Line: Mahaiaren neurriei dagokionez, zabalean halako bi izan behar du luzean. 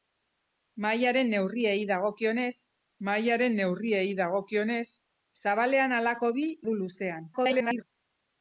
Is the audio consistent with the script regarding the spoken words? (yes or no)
no